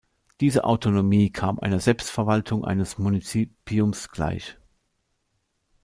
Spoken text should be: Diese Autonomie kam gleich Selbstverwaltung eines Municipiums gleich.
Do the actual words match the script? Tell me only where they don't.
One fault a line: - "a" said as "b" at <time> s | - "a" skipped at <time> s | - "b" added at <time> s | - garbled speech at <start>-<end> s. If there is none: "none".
- "gleich" said as "einer" at 1.6 s